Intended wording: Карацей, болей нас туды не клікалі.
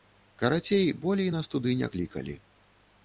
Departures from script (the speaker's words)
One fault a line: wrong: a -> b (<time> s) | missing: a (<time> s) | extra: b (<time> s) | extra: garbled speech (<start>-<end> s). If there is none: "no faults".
no faults